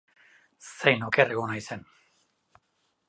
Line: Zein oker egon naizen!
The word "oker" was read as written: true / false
true